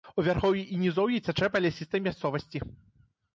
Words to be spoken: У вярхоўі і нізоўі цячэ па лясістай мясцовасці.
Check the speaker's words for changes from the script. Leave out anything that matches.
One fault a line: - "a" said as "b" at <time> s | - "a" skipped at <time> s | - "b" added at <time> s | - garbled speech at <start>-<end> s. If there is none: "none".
none